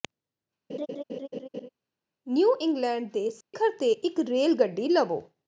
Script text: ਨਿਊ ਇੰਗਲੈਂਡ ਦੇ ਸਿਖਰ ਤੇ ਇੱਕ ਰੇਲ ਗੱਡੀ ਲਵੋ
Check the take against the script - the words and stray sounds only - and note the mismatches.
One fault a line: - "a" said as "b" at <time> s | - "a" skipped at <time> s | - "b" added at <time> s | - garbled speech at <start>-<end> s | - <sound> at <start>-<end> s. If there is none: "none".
- laugh at 0.7-1.7 s
- dropout at 3.4-3.5 s